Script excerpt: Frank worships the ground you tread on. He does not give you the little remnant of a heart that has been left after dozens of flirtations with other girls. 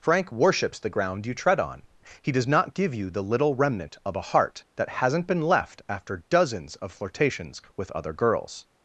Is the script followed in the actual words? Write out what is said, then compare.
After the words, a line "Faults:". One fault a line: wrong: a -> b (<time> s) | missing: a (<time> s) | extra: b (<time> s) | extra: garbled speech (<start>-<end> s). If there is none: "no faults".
Frank worships the ground you tread on. He does not give you the little remnant of a heart that hasn't been left after dozens of flirtations with other girls.
Faults:
wrong: has -> hasn't (4.9 s)